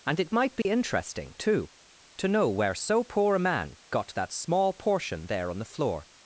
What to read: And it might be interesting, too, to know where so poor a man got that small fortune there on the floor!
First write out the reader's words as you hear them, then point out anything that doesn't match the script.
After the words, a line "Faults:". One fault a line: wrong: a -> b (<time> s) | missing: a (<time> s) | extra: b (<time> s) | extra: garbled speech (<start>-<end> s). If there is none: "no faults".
And it might be interesting, too, to know where so poor a man got that small portion there on the floor!
Faults:
wrong: fortune -> portion (4.7 s)